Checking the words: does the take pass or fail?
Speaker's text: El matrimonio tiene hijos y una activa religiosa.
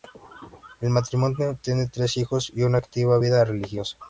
fail